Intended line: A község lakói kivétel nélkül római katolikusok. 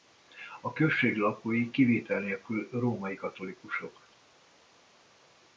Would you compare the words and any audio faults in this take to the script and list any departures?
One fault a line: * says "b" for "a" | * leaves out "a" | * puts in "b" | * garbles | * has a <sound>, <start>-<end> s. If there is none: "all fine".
all fine